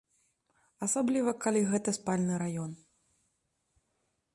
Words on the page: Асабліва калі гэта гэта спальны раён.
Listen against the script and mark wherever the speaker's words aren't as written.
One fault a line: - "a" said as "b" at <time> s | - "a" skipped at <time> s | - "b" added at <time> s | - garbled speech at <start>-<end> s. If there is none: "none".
- "гэта" skipped at 1.9 s